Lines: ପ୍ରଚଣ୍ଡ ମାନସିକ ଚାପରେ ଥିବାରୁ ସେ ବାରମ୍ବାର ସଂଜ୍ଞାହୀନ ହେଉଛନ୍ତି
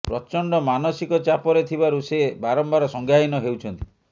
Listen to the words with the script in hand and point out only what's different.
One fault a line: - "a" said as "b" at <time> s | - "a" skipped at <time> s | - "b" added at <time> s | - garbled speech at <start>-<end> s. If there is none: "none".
none